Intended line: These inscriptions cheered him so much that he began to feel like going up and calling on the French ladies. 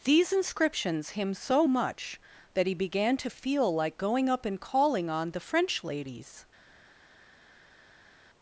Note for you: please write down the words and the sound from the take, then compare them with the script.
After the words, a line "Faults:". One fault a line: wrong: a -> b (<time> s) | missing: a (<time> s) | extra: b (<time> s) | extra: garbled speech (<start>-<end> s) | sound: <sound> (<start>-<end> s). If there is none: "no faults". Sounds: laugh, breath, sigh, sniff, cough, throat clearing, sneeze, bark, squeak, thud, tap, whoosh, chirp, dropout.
These inscriptions him so much that he began to feel like going up and calling on the French ladies.
Faults:
missing: cheered (1.1 s)